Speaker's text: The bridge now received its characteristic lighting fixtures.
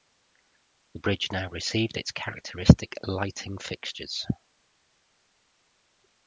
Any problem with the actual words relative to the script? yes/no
no